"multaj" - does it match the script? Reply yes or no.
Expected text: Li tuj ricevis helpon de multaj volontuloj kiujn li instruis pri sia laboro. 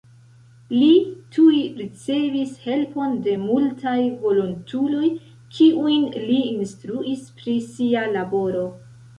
yes